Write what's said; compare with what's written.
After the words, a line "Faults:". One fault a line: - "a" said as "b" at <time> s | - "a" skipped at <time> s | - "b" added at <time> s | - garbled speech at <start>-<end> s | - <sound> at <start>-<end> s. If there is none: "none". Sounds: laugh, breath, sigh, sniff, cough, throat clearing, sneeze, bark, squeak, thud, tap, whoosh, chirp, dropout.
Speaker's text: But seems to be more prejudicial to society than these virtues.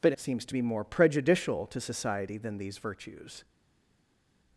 But seems to be more prejudicial to society than these virtues.
Faults:
none